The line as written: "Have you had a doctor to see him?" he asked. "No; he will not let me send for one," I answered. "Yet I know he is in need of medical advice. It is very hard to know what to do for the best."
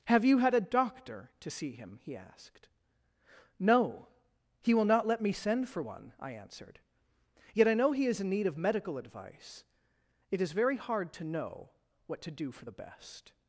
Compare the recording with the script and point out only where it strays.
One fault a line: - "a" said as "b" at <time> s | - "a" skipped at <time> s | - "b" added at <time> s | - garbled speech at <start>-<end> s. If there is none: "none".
none